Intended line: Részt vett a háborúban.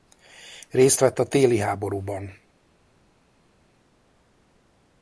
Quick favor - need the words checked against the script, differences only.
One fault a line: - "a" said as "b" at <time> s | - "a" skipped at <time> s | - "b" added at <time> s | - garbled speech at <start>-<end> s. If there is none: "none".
- "téli" added at 1.3 s